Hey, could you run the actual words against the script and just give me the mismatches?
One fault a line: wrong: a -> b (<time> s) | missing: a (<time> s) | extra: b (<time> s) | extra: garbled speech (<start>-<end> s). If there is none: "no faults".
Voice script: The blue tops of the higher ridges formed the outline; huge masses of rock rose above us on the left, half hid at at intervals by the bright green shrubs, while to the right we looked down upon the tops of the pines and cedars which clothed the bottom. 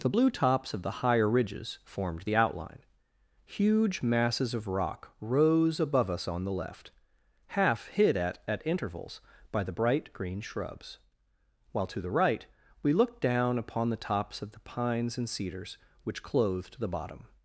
no faults